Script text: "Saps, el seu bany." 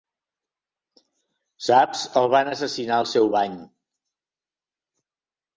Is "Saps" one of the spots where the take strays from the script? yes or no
no